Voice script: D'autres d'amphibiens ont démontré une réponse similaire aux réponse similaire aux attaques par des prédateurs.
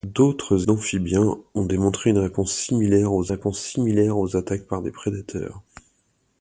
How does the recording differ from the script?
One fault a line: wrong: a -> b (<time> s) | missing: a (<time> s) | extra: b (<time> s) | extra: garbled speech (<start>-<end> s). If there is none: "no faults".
no faults